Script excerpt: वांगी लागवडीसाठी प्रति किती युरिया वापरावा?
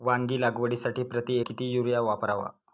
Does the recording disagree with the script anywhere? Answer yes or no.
no